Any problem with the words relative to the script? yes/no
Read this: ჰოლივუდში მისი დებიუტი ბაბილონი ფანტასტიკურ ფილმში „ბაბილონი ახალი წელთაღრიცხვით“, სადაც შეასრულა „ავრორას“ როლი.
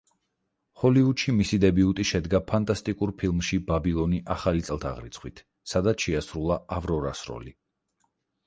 yes